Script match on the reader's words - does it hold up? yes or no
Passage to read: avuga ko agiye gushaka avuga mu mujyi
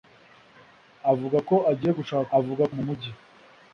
yes